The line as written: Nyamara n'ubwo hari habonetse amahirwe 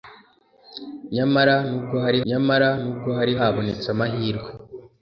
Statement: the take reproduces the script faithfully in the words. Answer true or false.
false